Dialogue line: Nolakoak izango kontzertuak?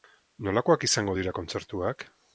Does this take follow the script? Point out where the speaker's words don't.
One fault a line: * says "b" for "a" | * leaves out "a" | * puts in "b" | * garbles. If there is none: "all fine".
* puts in "dira"